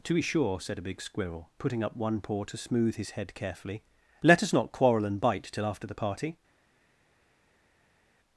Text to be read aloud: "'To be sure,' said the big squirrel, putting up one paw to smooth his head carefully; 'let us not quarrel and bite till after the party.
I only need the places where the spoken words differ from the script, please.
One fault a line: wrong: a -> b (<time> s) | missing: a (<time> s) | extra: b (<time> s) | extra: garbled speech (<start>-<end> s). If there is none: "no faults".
wrong: the -> a (0.8 s)